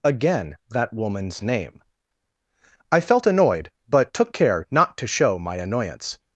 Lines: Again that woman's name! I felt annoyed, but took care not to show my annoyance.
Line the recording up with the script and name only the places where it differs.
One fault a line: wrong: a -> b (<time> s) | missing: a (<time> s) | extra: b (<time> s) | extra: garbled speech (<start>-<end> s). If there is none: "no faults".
no faults